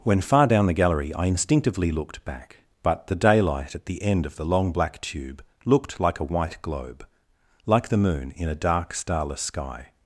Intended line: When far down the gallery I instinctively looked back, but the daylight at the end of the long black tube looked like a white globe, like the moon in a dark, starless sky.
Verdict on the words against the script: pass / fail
pass